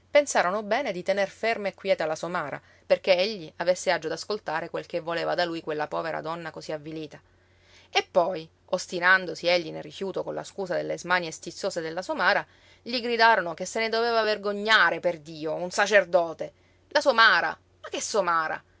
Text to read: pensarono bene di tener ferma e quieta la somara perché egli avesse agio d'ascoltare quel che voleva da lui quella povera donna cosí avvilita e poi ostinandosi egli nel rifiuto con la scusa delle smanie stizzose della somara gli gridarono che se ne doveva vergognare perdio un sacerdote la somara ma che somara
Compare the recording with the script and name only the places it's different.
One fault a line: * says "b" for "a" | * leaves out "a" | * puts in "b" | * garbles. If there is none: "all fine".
all fine